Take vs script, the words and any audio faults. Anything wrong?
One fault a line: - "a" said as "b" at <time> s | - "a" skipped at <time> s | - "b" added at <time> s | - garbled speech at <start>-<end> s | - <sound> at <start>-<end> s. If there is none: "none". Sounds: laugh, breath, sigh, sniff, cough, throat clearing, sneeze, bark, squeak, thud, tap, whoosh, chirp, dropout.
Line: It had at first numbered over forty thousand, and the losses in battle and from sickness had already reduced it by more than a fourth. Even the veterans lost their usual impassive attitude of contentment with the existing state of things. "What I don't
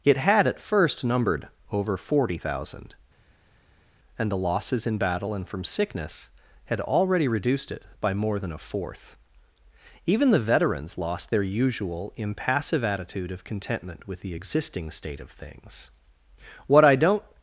none